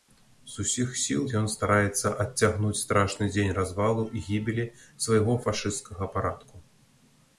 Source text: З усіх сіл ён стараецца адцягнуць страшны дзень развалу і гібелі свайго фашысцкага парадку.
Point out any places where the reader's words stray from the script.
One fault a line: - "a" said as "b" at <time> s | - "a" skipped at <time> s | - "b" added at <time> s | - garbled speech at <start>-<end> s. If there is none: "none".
none